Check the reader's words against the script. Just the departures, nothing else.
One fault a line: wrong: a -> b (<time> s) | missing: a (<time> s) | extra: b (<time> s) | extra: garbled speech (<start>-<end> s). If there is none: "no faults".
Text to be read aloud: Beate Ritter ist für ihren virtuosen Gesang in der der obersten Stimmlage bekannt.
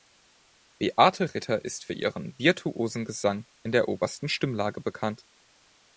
missing: der (3.9 s)